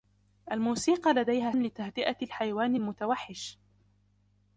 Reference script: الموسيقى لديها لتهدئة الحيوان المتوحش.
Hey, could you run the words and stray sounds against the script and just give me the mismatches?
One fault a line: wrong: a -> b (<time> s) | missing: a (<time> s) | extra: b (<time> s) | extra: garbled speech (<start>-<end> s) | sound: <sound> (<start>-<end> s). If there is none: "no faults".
no faults